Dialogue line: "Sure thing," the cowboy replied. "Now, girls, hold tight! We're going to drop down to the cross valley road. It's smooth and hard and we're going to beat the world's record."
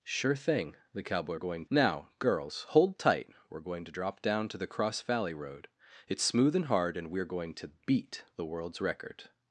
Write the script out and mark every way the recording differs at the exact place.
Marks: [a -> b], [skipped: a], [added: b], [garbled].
"Sure thing," the cowboy [replied. -> going] "Now, girls, hold tight! We're going to drop down to the cross valley road. It's smooth and hard and we're going to beat the world's record."